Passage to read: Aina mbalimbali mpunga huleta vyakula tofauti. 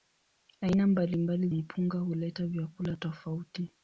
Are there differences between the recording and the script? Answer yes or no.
no